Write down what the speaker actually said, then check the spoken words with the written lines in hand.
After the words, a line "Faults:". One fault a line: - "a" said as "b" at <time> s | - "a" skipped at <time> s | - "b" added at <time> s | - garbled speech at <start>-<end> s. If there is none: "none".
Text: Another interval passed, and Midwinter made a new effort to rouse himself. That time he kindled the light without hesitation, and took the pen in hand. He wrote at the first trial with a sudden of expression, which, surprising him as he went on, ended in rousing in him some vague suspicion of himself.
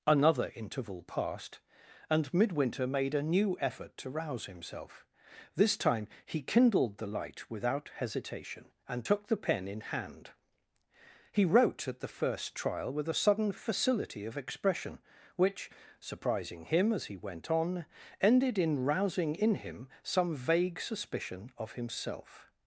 Another interval passed, and Midwinter made a new effort to rouse himself. This time he kindled the light without hesitation, and took the pen in hand. He wrote at the first trial with a sudden facility of expression, which, surprising him as he went on, ended in rousing in him some vague suspicion of himself.
Faults:
- "That" said as "This" at 5.5 s
- "facility" added at 13.5 s